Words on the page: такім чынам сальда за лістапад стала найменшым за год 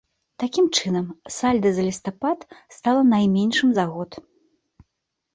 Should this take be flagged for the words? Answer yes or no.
no